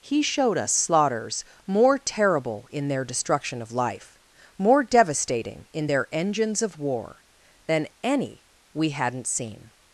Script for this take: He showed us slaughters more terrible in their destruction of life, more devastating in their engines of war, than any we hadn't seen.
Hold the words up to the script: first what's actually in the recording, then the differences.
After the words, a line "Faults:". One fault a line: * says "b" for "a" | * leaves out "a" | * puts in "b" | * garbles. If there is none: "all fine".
He showed us slaughters more terrible in their destruction of life, more devastating in their engines of war, than any we hadn't seen.
Faults:
all fine